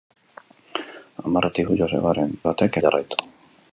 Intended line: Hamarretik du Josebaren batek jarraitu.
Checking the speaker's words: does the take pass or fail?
pass